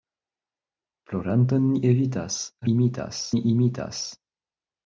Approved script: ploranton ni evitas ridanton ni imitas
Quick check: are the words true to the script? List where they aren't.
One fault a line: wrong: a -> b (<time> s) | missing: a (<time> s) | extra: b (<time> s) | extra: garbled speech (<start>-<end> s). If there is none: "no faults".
wrong: ridanton -> imitas (2.7 s)